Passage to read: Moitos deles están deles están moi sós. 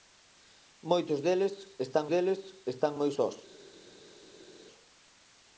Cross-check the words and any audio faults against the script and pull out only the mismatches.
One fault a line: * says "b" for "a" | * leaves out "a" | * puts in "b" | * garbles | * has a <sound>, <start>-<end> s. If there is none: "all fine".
all fine